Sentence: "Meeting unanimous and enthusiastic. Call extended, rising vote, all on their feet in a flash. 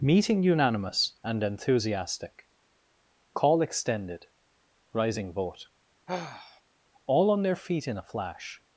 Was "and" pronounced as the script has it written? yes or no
yes